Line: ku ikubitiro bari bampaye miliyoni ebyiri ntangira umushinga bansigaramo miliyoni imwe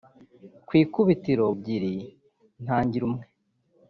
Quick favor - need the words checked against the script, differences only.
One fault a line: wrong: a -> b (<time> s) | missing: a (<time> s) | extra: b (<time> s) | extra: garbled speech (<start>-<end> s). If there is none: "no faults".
missing: bari bampaye miliyoni (1.4 s)
missing: umushinga bansigaramo miliyoni (3.0 s)